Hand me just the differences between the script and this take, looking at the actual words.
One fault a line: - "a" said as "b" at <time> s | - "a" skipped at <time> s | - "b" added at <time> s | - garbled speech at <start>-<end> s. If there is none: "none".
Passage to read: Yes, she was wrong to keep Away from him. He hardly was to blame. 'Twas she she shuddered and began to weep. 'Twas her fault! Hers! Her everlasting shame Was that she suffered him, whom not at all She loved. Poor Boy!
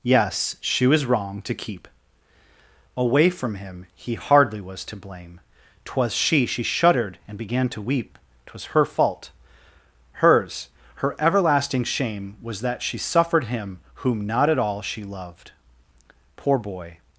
none